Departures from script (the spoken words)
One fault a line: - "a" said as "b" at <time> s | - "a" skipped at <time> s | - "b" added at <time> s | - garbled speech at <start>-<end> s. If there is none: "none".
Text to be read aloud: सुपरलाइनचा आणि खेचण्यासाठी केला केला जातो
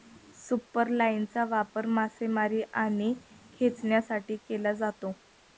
- "वापर मासेमारी" added at 1.4 s
- "केला" skipped at 4.7 s